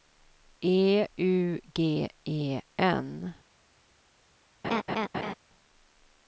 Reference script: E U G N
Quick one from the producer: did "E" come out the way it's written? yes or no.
yes